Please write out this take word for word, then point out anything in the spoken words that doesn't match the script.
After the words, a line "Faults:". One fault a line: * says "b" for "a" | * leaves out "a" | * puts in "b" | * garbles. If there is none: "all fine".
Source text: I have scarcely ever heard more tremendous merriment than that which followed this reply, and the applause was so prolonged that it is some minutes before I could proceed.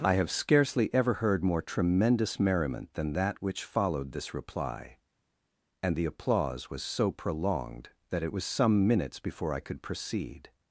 I have scarcely ever heard more tremendous merriment than that which followed this reply, and the applause was so prolonged that it was some minutes before I could proceed.
Faults:
* says "was" for "is"